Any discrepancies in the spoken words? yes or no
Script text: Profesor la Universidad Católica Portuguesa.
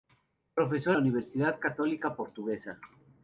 no